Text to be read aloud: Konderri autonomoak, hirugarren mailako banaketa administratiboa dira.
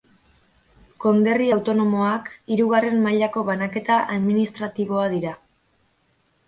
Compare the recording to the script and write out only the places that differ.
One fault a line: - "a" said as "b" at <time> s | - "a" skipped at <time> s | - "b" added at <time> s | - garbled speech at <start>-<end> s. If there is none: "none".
none